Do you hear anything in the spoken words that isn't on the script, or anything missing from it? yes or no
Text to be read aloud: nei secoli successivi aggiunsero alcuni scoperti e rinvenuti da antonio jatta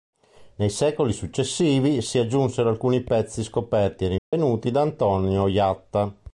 yes